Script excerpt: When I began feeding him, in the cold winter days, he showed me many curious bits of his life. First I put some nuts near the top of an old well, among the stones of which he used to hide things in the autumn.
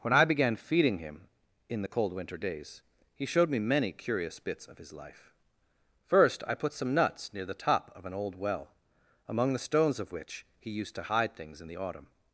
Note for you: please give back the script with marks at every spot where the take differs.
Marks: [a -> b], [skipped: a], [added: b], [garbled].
When I began feeding him, in the cold winter days, he showed me many curious bits of his life. First I put some nuts near the top of an old well, among the stones of which he used to hide things in the autumn.